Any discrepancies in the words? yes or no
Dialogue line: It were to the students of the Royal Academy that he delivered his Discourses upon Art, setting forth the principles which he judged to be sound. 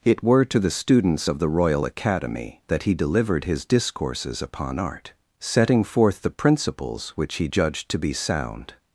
no